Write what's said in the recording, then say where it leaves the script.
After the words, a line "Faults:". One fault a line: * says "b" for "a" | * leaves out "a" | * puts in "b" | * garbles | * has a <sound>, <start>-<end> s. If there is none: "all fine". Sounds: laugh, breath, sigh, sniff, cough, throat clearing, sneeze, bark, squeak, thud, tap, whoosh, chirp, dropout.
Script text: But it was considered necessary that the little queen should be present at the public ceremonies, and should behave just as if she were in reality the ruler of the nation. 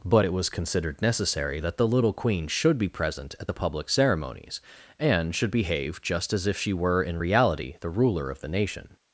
But it was considered necessary that the little queen should be present at the public ceremonies, and should behave just as if she were in reality the ruler of the nation.
Faults:
all fine